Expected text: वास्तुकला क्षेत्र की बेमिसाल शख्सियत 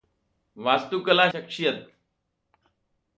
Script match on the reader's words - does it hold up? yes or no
no